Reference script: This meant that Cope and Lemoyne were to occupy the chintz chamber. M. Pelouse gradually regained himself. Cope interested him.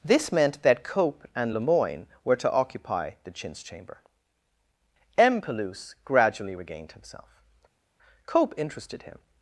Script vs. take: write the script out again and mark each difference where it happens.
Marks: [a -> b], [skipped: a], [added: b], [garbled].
This meant that Cope and Lemoyne were to occupy the chintz chamber. M. Pelouse gradually regained himself. Cope interested him.